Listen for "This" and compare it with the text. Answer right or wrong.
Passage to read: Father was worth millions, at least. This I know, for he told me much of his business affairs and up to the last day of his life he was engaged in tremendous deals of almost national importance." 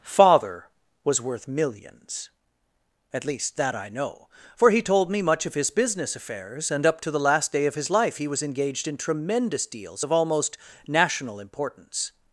wrong